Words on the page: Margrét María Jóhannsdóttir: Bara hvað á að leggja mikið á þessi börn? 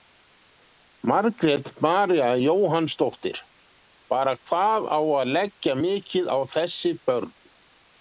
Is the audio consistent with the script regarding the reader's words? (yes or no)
yes